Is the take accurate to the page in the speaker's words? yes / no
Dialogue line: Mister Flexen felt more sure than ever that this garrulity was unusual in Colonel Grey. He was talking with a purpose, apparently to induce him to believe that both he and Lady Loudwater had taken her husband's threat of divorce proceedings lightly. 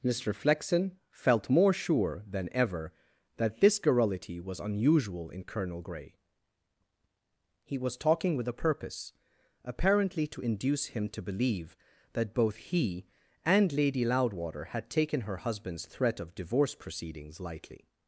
yes